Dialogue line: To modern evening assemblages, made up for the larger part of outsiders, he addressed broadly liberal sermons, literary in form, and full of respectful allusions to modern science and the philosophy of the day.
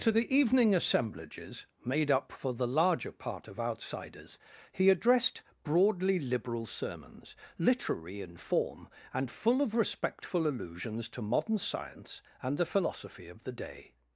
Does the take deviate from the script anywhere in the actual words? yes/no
yes